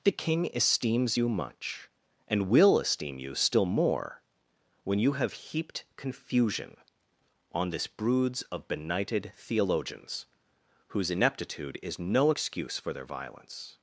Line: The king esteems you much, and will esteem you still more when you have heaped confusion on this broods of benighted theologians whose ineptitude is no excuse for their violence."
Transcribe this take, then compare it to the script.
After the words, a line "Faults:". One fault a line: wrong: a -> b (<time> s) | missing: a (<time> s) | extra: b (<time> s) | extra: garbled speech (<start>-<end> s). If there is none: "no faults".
The king esteems you much, and will esteem you still more when you have heaped confusion on this broods of benighted theologians whose ineptitude is no excuse for their violence."
Faults:
no faults